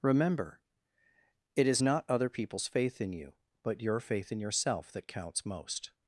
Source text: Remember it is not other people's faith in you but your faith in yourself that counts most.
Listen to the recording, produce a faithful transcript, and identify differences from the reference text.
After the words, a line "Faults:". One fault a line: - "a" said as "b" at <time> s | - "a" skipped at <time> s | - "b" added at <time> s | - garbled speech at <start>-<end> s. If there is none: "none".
Remember it is not other people's faith in you but your faith in yourself that counts most.
Faults:
none